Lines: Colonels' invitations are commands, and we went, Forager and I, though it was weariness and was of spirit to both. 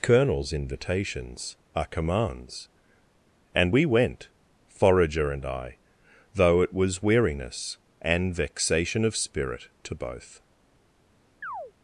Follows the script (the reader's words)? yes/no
no